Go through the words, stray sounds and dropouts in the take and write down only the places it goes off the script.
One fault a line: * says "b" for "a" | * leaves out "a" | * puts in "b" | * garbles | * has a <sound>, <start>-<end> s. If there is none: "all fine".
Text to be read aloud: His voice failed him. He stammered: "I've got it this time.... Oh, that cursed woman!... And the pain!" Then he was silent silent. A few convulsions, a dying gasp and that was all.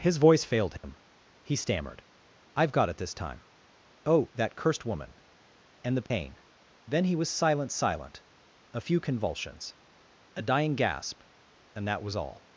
* has a dropout, 0.8-0.8 s
* has a dropout, 6.1-6.1 s